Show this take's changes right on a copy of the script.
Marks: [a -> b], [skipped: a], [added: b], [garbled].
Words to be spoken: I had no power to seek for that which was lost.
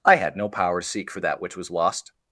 I had no power to seek for that which was lost.